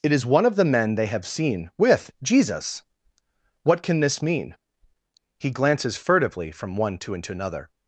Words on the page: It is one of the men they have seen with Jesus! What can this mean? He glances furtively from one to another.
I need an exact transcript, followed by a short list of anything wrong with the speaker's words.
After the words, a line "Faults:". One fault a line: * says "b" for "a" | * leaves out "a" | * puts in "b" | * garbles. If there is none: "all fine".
It is one of the men they have seen with Jesus! What can this mean? He glances furtively from one to another.
Faults:
all fine